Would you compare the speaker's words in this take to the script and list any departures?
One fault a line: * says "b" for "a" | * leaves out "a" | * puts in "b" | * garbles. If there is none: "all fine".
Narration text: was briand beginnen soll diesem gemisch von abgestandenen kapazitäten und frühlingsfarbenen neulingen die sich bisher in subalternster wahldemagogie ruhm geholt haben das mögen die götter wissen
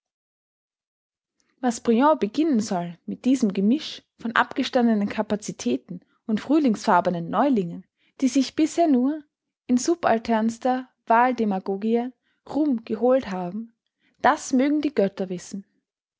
* puts in "mit"
* puts in "nur"